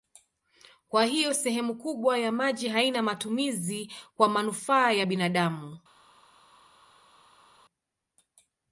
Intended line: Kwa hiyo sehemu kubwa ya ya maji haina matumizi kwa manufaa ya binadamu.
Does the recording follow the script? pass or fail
fail